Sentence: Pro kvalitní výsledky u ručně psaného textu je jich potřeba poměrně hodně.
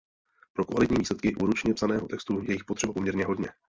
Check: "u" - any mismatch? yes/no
no